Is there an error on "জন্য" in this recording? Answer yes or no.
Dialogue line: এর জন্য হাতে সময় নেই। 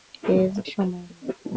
yes